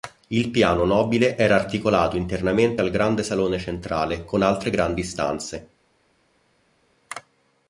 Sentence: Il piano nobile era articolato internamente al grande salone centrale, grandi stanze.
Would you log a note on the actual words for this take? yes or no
yes